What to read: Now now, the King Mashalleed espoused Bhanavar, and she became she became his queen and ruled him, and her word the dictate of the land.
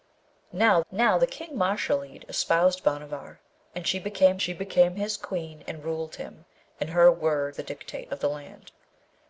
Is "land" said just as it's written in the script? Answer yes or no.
yes